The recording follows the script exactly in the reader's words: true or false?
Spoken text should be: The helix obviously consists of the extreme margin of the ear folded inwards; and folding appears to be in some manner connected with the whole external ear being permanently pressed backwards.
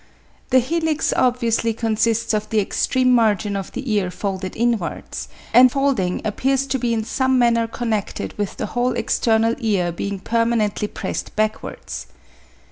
true